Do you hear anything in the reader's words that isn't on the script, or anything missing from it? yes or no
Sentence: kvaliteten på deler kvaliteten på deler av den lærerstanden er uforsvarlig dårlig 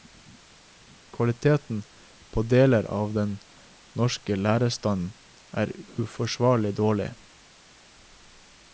yes